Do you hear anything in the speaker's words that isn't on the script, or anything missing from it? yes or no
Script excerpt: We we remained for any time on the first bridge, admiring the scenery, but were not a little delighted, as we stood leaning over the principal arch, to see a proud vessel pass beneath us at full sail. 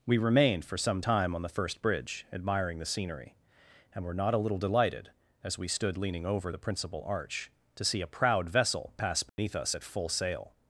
yes